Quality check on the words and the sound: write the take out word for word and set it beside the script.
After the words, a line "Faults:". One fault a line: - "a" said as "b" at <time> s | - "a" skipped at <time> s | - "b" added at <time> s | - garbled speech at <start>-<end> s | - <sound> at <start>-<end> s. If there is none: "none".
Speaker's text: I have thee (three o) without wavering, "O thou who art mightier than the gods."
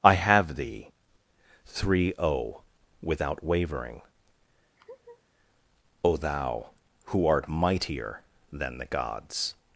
I have thee (three o) without wavering, "O thou who art mightier than the gods."
Faults:
- laugh at 4.8-5.2 s